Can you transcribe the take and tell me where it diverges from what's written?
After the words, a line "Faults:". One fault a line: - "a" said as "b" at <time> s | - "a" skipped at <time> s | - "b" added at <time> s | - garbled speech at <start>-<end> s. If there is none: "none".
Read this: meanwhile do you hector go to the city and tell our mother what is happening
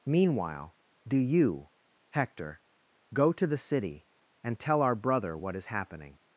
meanwhile do you hector go to the city and tell our brother what is happening
Faults:
- "mother" said as "brother" at 5.0 s